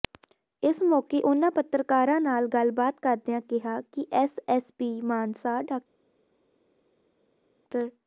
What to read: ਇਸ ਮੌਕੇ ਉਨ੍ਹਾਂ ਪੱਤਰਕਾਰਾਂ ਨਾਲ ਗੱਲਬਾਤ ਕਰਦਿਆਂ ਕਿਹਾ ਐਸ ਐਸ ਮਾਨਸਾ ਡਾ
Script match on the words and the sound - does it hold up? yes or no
no